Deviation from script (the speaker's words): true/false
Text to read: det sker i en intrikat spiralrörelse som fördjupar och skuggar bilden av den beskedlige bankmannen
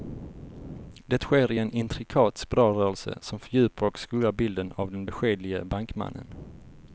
false